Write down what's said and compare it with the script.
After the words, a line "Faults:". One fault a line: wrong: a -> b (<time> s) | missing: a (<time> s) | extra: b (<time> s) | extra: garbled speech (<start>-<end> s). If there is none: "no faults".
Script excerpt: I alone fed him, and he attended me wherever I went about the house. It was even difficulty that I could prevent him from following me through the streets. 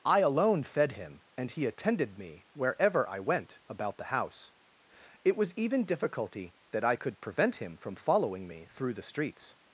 I alone fed him, and he attended me wherever I went about the house. It was even difficulty that I could prevent him from following me through the streets.
Faults:
no faults